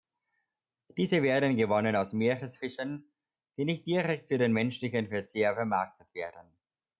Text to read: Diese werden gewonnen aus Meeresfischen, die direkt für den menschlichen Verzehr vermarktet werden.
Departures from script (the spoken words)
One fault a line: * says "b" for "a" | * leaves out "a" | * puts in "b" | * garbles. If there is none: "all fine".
* puts in "nicht"